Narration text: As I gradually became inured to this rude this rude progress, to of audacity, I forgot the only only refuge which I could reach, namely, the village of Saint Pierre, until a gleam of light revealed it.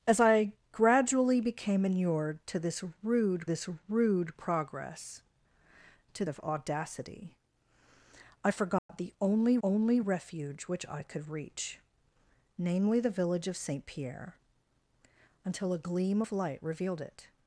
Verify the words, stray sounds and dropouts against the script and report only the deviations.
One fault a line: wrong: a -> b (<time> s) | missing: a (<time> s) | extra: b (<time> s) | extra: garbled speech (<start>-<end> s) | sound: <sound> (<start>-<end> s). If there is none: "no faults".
sound: dropout (8.8-8.9 s)